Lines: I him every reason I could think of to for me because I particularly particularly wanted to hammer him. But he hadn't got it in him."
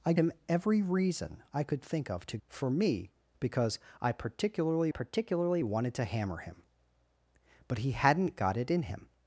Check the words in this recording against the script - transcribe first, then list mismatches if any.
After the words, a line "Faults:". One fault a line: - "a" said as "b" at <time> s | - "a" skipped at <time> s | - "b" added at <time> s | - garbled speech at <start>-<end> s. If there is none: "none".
I him every reason I could think of to for me because I particularly particularly wanted to hammer him. But he hadn't got it in him."
Faults:
none